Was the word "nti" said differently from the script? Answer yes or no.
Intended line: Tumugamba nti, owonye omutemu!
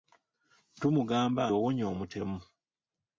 yes